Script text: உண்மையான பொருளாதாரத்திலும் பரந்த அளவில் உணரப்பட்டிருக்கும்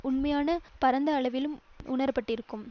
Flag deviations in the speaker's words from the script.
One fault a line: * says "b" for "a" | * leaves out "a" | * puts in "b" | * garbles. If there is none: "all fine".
* leaves out "பொருளாதாரத்திலும்"